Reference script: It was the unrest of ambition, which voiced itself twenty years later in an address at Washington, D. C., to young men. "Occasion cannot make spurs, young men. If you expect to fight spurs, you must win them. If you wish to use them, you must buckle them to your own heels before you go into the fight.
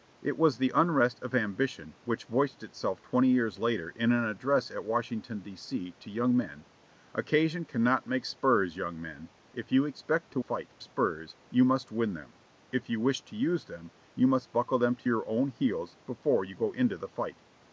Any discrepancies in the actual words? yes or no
no